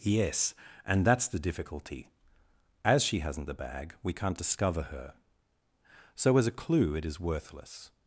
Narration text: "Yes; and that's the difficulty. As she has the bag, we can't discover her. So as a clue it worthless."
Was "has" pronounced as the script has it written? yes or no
no